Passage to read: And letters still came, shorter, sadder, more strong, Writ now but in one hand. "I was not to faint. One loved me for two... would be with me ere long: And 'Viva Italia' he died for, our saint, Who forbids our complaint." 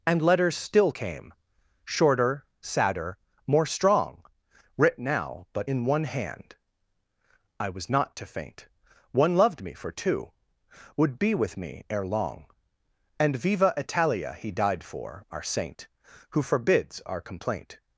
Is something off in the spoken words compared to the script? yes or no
no